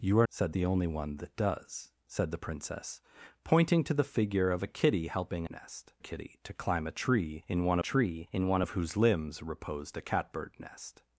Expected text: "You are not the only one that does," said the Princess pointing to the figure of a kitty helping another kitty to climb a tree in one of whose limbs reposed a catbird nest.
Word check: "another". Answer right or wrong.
wrong